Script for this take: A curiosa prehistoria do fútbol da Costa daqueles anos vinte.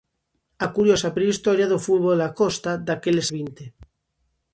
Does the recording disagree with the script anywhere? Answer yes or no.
yes